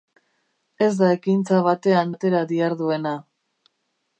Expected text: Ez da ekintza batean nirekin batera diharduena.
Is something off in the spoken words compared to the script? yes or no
yes